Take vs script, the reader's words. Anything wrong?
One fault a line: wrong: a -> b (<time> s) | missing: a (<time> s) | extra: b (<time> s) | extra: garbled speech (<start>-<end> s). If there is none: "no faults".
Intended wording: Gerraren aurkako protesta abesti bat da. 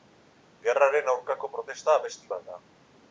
no faults